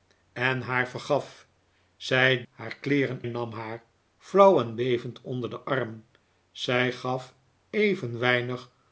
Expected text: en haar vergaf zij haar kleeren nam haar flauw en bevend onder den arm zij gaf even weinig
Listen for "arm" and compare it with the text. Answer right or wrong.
right